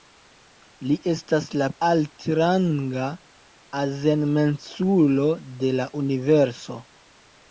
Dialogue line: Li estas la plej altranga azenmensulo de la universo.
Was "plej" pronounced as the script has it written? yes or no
no